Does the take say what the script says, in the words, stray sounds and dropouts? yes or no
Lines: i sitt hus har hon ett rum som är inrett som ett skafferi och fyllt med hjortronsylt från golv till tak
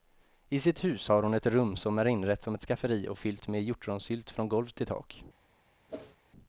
no